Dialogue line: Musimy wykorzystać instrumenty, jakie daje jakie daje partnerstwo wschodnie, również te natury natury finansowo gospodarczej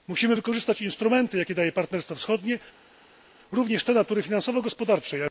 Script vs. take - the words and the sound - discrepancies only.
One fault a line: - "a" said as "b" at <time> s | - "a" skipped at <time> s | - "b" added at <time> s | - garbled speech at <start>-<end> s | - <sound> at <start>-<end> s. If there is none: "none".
- "jakie daje" skipped at 1.7 s
- "natury" skipped at 4.2 s